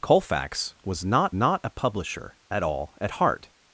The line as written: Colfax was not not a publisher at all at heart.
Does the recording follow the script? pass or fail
pass